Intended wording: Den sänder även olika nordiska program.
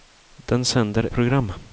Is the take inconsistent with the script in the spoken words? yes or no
yes